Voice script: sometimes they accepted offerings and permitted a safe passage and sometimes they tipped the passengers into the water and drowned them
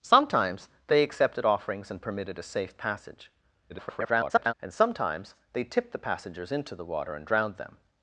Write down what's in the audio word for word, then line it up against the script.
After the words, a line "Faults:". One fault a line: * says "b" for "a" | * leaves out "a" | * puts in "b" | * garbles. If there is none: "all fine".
sometimes they accepted offerings and permitted a safe passage [garbled] and sometimes they tipped the passengers into the water and drowned them
Faults:
* garbles